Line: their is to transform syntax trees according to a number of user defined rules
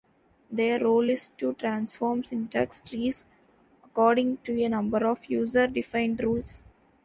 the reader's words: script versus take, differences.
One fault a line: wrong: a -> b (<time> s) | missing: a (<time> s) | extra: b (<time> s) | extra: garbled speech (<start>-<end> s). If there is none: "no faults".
extra: role (0.8 s)